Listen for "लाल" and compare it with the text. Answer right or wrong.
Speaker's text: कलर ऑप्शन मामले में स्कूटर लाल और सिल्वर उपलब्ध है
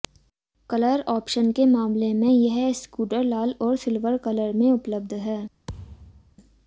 right